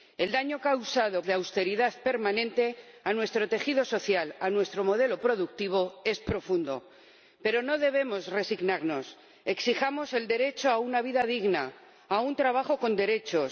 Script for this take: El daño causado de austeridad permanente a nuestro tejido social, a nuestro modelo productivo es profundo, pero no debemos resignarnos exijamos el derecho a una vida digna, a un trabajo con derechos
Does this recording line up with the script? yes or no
yes